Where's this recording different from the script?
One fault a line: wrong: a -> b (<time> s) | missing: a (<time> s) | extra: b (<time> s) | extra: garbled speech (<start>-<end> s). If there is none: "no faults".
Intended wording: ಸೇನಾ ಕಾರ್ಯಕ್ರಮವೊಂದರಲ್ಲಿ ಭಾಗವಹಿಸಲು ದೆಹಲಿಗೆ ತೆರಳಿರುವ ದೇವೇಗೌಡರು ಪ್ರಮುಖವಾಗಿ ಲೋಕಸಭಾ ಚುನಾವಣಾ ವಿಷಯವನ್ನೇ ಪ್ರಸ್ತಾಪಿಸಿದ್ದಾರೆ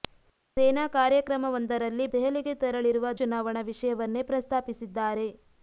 missing: ಭಾಗವಹಿಸಲು (2.0 s)
missing: ದೇವೇಗೌಡರು ಪ್ರಮುಖವಾಗಿ ಲೋಕಸಭಾ (3.1 s)